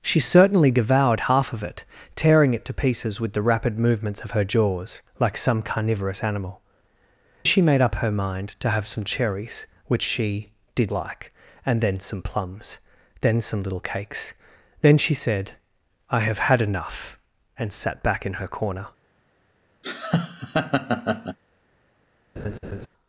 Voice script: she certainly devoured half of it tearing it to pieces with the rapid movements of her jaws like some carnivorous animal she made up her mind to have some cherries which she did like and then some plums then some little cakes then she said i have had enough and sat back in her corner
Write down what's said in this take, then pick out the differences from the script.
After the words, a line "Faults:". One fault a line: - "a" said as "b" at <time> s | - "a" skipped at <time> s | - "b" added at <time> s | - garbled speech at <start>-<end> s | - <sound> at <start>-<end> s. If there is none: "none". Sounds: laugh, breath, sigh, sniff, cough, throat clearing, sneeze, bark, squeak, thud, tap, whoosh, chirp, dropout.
she certainly devoured half of it tearing it to pieces with the rapid movements of her jaws like some carnivorous animal she made up her mind to have some cherries which she did like and then some plums then some little cakes then she said i have had enough and sat back in her corner
Faults:
- laugh at 19.8-21.4 s
- laugh at 22.4-22.9 s